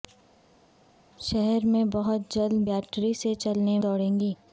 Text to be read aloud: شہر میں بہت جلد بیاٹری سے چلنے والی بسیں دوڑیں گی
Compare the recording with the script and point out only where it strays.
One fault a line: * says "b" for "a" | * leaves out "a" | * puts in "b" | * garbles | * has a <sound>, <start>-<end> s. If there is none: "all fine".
* leaves out "والی بسیں"